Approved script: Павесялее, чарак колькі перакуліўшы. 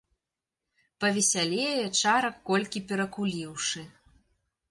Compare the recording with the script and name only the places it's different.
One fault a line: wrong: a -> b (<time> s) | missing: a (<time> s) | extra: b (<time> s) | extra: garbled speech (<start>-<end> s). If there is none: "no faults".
no faults